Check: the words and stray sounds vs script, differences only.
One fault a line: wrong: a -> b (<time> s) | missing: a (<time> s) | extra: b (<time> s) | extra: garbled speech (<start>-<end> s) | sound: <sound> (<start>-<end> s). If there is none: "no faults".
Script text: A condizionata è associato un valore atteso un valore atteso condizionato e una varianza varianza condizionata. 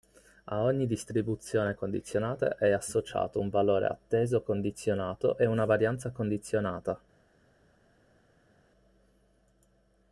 extra: ogni distribuzione (0.6 s)
missing: un valore atteso (4.4 s)
missing: varianza (6.1 s)